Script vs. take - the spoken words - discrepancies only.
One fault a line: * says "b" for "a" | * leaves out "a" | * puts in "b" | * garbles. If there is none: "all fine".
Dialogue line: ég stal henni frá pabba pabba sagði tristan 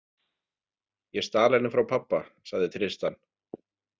* leaves out "pabba"